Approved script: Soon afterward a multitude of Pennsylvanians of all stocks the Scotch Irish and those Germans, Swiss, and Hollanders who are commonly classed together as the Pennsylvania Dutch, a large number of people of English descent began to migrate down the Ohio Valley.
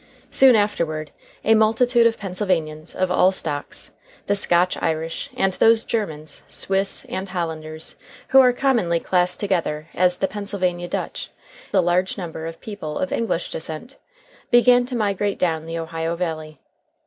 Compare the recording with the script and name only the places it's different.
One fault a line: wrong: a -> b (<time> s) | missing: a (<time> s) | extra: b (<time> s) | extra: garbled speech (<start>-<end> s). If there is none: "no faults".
no faults